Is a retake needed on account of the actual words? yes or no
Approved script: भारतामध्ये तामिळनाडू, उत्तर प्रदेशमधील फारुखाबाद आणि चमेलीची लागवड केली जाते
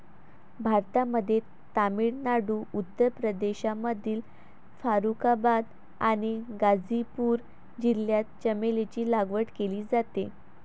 yes